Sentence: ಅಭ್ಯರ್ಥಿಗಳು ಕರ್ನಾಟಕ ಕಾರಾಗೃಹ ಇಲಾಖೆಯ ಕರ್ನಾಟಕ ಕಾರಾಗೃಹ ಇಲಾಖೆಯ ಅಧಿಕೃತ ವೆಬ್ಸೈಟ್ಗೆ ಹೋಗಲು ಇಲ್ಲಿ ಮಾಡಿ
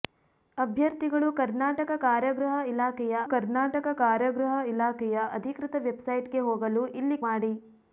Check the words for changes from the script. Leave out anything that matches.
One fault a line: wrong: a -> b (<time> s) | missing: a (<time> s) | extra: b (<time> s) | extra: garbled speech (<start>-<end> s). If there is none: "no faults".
no faults